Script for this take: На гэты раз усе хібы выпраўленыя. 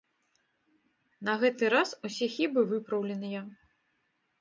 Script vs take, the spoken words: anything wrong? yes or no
no